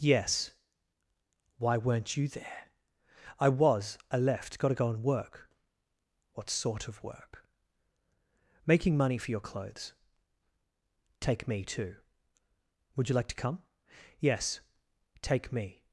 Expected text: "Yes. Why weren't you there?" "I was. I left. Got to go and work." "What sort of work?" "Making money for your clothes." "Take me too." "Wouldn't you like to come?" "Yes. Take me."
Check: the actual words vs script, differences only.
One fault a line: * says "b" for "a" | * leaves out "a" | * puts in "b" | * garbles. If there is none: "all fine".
* says "Would" for "Wouldn't"